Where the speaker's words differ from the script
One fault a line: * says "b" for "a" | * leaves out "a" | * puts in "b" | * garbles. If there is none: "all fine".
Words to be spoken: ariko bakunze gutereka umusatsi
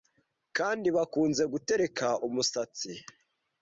* says "kandi" for "ariko"